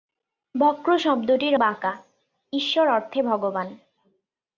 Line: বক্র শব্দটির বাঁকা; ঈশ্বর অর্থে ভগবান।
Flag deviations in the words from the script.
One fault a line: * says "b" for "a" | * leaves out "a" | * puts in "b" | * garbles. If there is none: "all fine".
all fine